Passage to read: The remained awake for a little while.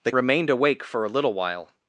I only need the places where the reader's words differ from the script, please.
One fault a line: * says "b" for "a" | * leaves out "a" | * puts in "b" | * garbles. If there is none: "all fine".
all fine